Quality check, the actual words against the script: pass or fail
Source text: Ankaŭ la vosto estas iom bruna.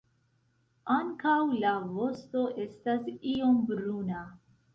pass